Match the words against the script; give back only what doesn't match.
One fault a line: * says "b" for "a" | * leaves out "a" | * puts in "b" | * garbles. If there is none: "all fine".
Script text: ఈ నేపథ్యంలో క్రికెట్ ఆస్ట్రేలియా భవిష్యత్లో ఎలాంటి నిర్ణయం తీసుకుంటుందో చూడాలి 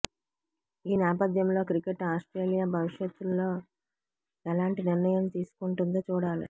all fine